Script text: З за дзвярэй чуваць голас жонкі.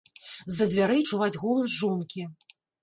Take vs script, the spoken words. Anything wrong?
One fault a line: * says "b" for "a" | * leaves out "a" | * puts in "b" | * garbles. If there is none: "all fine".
all fine